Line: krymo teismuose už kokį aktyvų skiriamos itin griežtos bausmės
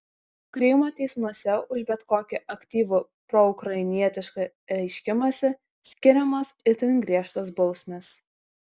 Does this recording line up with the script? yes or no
no